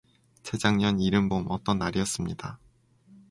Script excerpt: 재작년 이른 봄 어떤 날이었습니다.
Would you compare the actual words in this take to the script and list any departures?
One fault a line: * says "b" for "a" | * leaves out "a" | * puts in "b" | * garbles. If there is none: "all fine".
all fine